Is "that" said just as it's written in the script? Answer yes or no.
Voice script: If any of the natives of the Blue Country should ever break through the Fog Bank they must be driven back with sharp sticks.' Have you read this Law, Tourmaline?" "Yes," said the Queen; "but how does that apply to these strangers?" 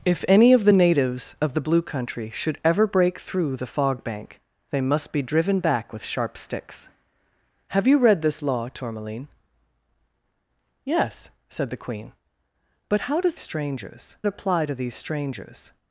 no